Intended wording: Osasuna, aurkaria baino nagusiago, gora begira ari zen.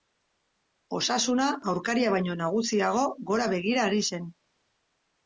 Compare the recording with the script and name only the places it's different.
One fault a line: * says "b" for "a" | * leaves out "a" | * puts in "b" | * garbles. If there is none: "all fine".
all fine